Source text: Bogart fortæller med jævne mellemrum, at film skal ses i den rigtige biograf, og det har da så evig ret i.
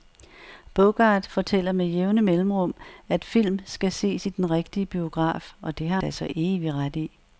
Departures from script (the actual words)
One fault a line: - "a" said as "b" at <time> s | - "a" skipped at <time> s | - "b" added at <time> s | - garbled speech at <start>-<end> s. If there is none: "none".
none